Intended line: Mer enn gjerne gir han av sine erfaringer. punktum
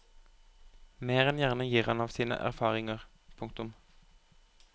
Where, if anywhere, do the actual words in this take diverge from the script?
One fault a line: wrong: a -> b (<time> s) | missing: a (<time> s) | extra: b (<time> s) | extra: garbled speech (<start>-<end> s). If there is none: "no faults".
no faults